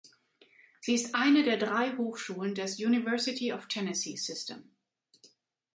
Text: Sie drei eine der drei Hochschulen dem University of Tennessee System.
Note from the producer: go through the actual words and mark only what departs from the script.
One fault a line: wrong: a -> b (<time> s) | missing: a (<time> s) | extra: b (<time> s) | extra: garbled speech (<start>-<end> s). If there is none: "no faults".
wrong: drei -> ist (0.9 s)
wrong: dem -> des (2.5 s)